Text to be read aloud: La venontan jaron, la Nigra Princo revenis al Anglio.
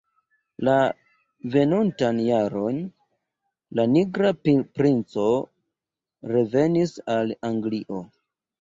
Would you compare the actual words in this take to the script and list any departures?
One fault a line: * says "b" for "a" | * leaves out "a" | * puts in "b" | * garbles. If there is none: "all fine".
all fine